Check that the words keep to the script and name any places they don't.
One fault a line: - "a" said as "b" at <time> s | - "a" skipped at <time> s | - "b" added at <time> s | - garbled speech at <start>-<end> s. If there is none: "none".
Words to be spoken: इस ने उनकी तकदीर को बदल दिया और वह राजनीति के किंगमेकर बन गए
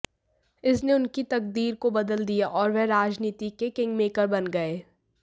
none